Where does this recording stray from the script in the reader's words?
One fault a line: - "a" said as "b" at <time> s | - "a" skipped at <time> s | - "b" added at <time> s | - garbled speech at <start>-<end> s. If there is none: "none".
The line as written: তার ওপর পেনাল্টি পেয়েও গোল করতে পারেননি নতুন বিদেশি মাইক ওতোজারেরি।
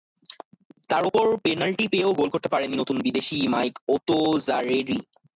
none